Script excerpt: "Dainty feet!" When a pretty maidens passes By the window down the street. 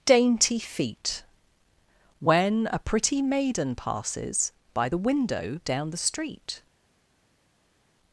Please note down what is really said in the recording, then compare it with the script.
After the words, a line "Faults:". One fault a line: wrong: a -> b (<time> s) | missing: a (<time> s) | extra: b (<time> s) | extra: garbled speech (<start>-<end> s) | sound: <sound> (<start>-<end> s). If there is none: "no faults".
"Dainty feet!" When a pretty maiden passes By the window down the street.
Faults:
wrong: maidens -> maiden (3.2 s)